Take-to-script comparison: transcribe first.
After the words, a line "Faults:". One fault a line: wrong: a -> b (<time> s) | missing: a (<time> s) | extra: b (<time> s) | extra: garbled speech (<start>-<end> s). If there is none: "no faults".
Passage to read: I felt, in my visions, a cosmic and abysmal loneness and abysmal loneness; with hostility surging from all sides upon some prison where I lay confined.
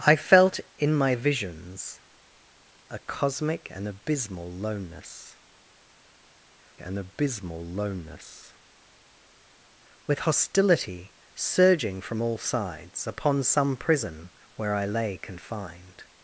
I felt, in my visions, a cosmic and abysmal loneness and abysmal loneness; with hostility surging from all sides upon some prison where I lay confined.
Faults:
no faults